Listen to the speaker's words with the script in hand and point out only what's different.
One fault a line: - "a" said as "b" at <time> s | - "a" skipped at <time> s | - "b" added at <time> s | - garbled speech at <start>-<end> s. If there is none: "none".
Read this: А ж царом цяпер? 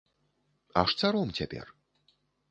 none